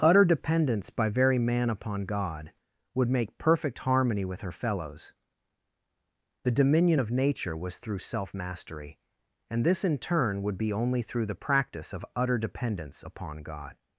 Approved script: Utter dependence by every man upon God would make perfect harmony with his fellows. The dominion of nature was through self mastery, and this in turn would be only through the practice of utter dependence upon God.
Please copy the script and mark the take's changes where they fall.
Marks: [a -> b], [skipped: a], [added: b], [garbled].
Utter dependence by [every -> very] man upon God would make perfect harmony with [his -> her] fellows. The dominion of nature was through self mastery, and this in turn would be only through the practice of utter dependence upon God.